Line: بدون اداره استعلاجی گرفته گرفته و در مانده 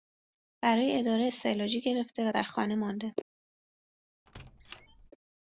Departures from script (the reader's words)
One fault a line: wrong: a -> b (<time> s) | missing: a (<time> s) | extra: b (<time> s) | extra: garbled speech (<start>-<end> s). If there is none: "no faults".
wrong: بدون -> برای (0.6 s)
missing: گرفته (2.3 s)
extra: خانه (2.4 s)